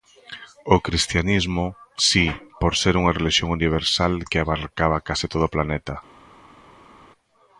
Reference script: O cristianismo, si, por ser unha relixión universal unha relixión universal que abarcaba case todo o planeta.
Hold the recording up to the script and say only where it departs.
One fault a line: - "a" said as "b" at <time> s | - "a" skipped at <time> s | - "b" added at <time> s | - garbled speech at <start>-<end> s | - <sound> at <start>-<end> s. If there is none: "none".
- "unha relixión universal" skipped at 4.1 s